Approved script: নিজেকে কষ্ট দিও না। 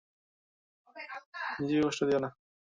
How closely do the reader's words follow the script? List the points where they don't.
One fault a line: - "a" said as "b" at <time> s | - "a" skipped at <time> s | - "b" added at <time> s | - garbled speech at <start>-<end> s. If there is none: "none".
none